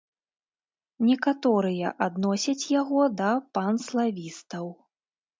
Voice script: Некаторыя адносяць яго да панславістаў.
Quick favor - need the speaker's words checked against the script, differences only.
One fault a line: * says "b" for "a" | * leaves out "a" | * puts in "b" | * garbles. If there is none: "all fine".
all fine